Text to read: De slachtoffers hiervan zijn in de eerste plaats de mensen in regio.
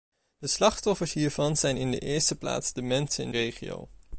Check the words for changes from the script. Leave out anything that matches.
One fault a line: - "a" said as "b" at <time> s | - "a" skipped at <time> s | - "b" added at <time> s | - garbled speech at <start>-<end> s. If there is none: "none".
none